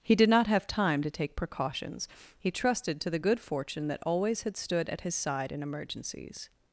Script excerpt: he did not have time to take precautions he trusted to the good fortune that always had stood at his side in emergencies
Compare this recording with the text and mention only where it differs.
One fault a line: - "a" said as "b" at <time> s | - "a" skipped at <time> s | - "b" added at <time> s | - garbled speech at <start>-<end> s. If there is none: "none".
none